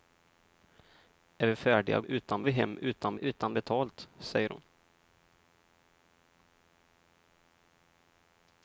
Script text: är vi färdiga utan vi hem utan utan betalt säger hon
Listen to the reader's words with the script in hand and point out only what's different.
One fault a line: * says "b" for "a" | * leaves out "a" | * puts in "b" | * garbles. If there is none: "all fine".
all fine